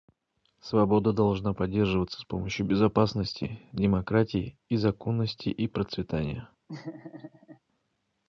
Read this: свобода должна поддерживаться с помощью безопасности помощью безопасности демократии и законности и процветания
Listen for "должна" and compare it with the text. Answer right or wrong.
right